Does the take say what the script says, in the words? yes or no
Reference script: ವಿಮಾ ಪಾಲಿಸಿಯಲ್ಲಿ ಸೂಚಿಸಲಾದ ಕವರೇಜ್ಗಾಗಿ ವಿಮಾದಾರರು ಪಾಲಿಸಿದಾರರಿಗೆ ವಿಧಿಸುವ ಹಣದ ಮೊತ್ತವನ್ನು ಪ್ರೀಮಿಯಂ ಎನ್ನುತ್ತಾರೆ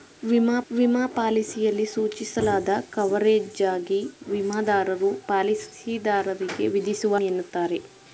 no